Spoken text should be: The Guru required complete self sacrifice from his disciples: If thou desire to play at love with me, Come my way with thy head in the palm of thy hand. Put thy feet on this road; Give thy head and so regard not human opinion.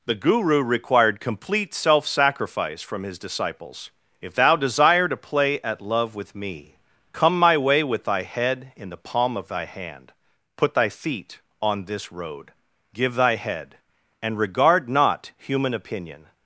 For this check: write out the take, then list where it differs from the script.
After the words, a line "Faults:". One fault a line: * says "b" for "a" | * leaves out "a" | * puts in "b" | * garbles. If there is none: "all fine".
The Guru required complete self sacrifice from his disciples: If thou desire to play at love with me, Come my way with thy head in the palm of thy hand. Put thy feet on this road; Give thy head and regard not human opinion.
Faults:
* leaves out "so"